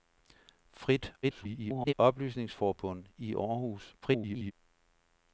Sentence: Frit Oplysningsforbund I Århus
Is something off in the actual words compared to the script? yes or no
yes